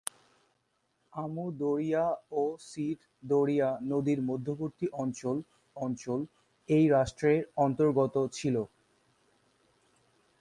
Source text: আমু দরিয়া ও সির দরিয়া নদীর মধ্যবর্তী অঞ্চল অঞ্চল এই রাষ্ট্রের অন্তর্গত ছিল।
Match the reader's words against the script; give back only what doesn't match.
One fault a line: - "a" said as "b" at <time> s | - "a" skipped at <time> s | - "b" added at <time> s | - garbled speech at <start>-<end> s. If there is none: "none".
none